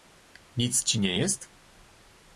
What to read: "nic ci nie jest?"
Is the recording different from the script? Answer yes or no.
no